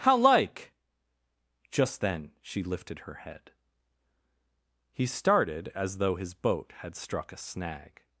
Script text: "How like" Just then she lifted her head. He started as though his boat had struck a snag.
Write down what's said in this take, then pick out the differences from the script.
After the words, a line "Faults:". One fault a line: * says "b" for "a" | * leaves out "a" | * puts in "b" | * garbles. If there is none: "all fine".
"How like" Just then she lifted her head. He started as though his boat had struck a snag.
Faults:
all fine